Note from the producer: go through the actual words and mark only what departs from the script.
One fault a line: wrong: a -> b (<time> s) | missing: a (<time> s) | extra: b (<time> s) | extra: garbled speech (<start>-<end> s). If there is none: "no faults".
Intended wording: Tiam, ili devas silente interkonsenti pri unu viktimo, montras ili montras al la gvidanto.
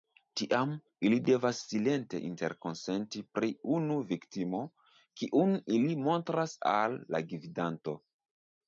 wrong: montras -> kiun (5.2 s)